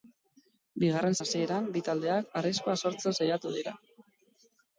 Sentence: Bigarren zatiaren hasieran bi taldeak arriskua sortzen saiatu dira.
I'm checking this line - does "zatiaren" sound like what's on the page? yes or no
no